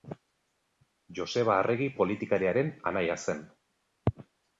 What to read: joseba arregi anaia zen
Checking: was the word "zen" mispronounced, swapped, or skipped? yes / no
no